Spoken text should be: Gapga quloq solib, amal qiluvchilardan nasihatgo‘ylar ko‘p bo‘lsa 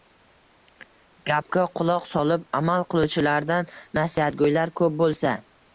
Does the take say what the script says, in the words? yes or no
yes